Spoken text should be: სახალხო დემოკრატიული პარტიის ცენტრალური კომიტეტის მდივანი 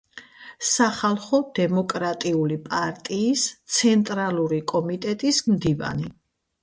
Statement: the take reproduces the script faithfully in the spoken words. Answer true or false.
true